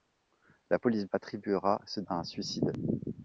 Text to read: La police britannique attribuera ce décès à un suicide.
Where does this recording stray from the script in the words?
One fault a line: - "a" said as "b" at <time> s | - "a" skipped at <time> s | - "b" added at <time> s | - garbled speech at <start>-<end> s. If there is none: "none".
- "britannique" skipped at 1.0 s
- "décès" skipped at 2.0 s